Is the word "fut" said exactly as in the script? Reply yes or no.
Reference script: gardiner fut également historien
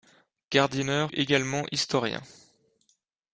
no